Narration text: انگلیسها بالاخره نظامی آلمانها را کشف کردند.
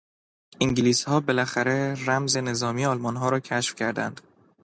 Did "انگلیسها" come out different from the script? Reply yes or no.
no